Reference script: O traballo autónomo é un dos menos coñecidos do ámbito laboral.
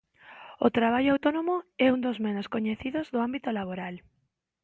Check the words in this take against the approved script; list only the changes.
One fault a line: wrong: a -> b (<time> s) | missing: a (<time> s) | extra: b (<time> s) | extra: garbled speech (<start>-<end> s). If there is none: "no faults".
no faults